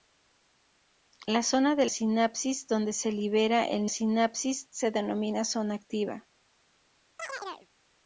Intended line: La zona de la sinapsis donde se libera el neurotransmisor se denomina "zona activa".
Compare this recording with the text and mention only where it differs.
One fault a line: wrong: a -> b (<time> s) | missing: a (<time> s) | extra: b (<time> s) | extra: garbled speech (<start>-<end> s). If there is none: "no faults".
missing: la (1.9 s)
wrong: neurotransmisor -> sinapsis (3.9 s)